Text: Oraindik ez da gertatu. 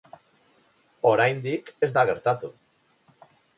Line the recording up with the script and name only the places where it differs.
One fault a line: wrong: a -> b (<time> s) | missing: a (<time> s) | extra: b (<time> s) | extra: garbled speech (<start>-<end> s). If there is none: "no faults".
no faults